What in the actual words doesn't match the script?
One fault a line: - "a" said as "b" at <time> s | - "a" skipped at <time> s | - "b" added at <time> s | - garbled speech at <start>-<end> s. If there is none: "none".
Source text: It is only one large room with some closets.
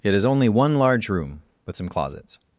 none